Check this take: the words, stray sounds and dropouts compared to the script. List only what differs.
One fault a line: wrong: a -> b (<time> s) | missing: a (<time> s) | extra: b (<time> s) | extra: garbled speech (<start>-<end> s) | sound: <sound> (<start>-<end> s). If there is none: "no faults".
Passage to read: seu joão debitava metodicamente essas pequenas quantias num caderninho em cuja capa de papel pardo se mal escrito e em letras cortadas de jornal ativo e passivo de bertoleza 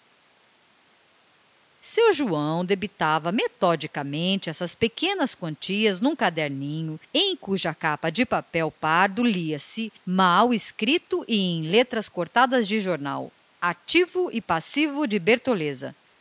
extra: lia (9.2 s)